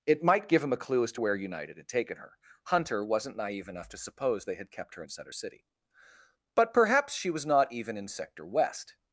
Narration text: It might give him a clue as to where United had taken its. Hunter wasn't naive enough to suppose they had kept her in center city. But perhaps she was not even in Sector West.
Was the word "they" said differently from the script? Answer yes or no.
no